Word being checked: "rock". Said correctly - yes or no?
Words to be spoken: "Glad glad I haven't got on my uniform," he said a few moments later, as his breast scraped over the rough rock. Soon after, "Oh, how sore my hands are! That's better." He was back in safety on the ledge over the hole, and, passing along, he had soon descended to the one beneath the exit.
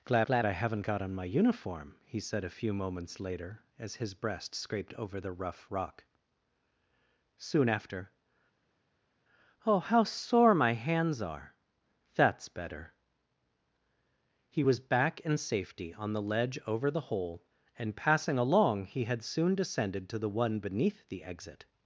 yes